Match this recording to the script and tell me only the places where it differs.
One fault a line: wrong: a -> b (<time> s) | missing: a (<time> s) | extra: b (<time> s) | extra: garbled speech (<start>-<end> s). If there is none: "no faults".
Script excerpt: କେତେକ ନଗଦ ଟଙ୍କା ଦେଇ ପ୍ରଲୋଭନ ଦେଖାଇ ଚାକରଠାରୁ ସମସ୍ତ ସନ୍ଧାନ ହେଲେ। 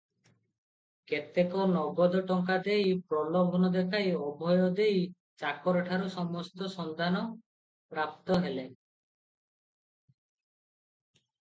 extra: ଅଭୟ ଦେଇ (4.2 s)
extra: ପ୍ରାପ୍ତ (7.9 s)